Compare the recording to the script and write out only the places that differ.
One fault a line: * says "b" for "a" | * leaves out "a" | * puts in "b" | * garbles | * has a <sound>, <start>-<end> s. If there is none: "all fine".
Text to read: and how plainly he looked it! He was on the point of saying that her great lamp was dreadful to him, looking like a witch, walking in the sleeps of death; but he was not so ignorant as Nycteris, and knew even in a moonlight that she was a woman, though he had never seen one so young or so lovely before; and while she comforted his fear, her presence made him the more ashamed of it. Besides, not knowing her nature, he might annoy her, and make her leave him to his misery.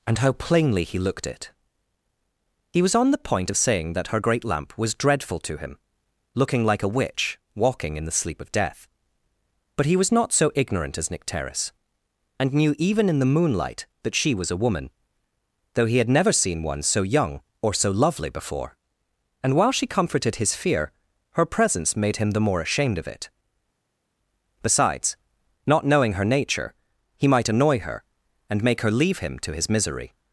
* says "sleep" for "sleeps"
* says "the" for "a"